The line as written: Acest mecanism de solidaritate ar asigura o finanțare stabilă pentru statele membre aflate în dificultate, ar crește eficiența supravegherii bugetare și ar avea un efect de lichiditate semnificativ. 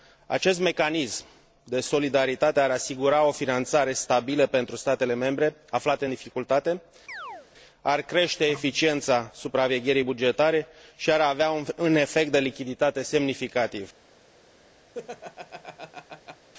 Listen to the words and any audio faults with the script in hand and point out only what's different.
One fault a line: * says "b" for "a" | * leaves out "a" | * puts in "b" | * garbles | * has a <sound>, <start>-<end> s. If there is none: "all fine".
* has a chirp, 7.1-7.5 s
* has a laugh, 14.9-16.5 s